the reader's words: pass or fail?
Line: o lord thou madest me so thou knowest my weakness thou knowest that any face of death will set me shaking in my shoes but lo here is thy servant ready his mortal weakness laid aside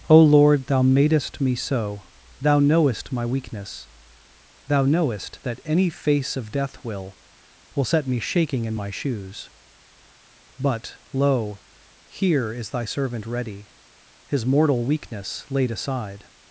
fail